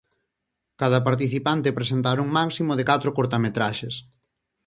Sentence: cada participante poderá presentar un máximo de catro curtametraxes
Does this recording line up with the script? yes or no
no